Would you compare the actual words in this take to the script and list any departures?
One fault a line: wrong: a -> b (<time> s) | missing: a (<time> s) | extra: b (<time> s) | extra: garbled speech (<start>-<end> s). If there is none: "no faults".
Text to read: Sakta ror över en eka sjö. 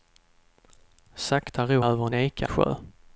no faults